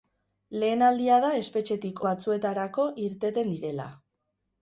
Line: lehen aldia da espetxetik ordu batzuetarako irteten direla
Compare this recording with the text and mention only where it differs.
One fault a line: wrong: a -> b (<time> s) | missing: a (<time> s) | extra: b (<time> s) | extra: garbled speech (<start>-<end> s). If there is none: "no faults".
missing: ordu (2.0 s)